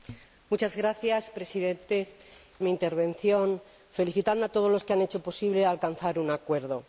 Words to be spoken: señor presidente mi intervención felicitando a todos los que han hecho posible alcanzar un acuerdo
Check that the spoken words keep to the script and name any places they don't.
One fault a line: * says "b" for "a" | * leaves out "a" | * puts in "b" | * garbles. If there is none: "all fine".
all fine